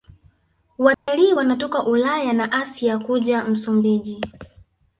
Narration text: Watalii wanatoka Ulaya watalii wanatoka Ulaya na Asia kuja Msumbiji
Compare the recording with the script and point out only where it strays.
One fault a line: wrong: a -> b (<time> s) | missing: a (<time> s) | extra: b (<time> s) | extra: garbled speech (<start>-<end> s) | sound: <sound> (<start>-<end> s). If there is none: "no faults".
sound: dropout (0.9-1.1 s)
missing: watalii wanatoka Ulaya (2.3 s)